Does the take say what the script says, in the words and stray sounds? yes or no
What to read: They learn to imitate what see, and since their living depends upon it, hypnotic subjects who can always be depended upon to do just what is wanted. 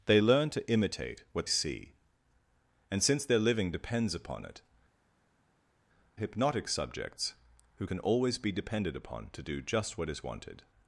yes